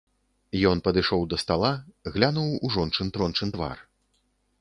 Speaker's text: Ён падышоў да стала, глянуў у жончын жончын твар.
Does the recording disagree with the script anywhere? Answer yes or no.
no